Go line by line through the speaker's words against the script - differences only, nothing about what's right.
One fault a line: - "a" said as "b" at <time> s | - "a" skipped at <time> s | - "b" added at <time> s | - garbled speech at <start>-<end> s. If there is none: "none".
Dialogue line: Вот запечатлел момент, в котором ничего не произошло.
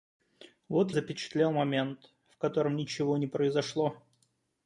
none